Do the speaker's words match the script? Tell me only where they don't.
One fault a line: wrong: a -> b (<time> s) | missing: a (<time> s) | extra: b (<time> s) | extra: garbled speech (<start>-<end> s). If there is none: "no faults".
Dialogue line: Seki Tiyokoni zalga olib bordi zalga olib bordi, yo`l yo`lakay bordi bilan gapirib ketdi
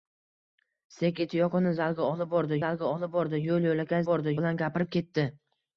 no faults